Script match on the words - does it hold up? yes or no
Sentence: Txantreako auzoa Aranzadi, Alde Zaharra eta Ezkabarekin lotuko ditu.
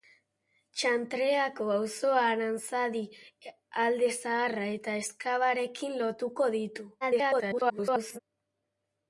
no